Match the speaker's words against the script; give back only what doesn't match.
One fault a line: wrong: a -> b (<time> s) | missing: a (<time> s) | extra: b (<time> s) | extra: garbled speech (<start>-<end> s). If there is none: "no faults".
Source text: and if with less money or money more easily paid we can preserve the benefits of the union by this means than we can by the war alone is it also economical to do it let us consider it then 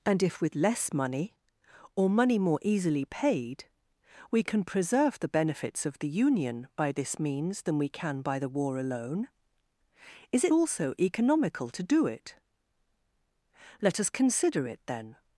no faults